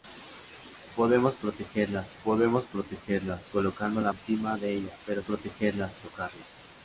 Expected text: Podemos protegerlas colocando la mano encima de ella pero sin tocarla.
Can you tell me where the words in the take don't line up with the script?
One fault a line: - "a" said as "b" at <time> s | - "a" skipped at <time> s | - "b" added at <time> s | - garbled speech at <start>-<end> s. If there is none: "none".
- "podemos protegerlas" added at 2.2 s
- "mano" skipped at 4.1 s
- "sin" said as "protegerlas" at 5.2 s